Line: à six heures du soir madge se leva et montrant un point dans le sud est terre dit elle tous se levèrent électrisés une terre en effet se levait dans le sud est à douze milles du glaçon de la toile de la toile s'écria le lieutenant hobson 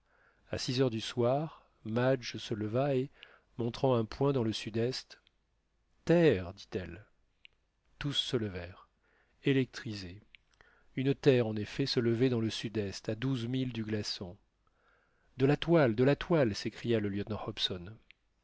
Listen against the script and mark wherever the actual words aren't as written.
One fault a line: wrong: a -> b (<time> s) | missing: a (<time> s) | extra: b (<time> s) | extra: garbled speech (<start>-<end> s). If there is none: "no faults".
no faults